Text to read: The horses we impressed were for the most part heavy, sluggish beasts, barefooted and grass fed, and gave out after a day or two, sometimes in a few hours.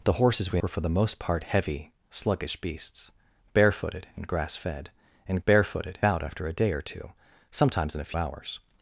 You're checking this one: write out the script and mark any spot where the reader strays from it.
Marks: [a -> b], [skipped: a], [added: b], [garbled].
The horses we [skipped: impressed] were for the most part heavy, sluggish beasts, barefooted and grass fed, and [gave -> barefooted] out after a day or two, sometimes in a [skipped: few] hours.